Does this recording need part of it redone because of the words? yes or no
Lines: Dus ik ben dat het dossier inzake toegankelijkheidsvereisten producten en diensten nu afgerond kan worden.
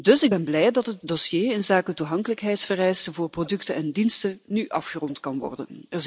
yes